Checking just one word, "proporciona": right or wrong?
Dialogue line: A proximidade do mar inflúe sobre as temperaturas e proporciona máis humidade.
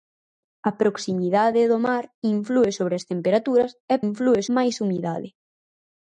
wrong